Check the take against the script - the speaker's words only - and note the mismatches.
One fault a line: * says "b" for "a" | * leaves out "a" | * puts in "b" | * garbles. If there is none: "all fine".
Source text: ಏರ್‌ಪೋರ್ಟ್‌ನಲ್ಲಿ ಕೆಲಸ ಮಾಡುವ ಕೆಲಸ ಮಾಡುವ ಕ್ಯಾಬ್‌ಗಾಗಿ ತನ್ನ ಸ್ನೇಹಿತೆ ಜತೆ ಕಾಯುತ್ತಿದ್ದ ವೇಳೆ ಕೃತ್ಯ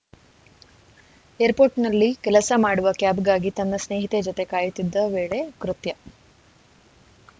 * leaves out "ಕೆಲಸ ಮಾಡುವ"